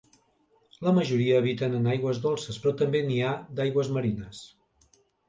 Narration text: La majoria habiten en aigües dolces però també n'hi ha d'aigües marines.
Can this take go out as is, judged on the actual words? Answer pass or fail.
pass